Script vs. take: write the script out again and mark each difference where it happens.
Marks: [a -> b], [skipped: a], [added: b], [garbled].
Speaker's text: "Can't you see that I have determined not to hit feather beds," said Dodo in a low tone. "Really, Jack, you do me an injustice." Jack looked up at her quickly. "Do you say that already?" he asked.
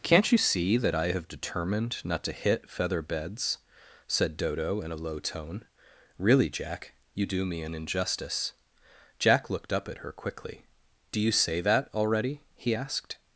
"Can't you see that I have determined not to hit feather beds," said Dodo in a low tone. "Really, Jack, you do me an injustice." Jack looked up at her quickly. "Do you say that already?" he asked.